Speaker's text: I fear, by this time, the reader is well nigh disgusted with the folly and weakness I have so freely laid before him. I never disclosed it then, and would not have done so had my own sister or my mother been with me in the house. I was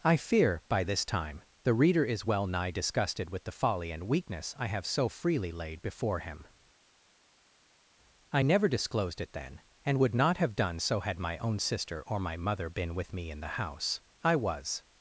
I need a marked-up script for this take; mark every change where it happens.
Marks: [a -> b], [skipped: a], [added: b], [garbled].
I fear, by this time, the reader is well nigh disgusted with the folly and weakness I have so freely laid before him. I never disclosed it then, and would not have done so had my own sister or my mother been with me in the house. I was